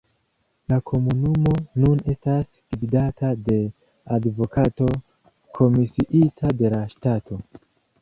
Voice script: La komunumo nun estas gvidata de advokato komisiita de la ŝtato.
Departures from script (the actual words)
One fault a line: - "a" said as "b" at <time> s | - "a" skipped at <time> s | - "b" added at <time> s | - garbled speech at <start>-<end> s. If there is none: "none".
none